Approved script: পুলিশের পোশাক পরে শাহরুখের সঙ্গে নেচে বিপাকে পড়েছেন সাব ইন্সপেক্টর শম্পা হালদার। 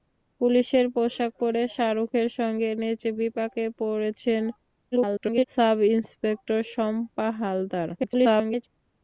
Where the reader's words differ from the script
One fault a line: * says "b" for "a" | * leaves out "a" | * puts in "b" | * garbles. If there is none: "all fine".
* garbles
* garbles